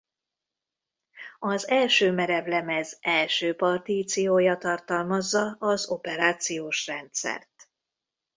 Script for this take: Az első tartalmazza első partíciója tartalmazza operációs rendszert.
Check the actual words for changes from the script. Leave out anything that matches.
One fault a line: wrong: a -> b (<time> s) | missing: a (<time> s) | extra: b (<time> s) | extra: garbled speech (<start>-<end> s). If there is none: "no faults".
wrong: tartalmazza -> merevlemez (2.1 s)
extra: az (5.6 s)